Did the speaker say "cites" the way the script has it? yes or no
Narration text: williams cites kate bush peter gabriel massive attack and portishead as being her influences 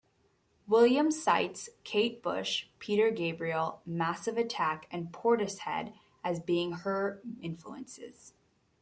yes